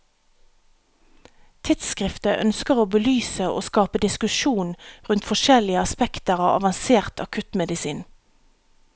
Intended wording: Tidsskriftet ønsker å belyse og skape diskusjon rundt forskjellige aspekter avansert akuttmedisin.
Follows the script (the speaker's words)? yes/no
no